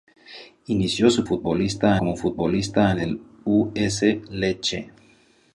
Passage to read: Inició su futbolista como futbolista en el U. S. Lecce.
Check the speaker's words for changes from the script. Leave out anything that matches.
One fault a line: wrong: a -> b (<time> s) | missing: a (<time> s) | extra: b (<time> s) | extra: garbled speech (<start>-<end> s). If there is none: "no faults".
no faults